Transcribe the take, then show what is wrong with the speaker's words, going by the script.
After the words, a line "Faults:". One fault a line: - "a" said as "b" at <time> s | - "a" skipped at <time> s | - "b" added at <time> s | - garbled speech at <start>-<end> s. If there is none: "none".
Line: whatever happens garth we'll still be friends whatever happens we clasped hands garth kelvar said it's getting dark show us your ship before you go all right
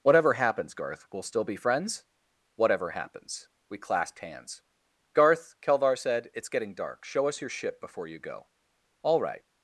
whatever happens garth we'll still be friends whatever happens we clasped hands garth kelvar said it's getting dark show us your ship before you go all right
Faults:
none